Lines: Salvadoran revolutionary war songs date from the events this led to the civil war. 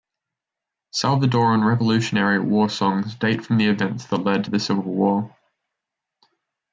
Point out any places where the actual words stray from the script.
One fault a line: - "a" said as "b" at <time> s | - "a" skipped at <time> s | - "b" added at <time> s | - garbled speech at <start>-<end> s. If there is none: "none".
- "this" said as "that" at 4.1 s